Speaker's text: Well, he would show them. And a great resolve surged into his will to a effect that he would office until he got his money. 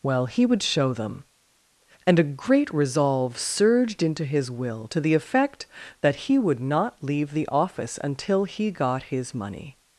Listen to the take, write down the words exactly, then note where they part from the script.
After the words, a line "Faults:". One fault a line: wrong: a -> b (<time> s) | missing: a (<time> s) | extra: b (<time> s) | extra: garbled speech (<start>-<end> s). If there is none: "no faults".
Well, he would show them. And a great resolve surged into his will to the effect that he would not leave the office until he got his money.
Faults:
wrong: a -> the (5.0 s)
extra: not leave the (6.6 s)